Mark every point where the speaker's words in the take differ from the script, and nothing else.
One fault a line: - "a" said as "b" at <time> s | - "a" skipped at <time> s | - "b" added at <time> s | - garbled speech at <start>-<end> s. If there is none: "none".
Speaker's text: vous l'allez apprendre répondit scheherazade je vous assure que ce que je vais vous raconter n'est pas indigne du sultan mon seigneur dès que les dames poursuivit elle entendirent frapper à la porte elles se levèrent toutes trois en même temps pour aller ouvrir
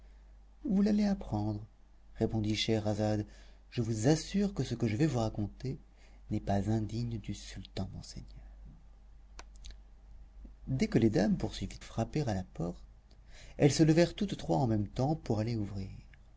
- "elle entendirent" skipped at 11.8 s